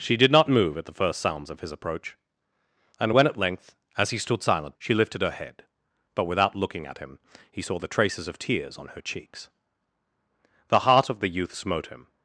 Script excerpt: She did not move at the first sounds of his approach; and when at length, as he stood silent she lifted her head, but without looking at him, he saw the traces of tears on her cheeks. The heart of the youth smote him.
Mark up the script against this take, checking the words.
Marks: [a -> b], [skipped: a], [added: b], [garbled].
She did not move at the first sounds of his approach; and when at length, as he stood silent she lifted her head, but without looking at him, he saw the traces of tears on her cheeks. The heart of the youth smote him.